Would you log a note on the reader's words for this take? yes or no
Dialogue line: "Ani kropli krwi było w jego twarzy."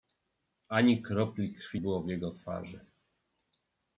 no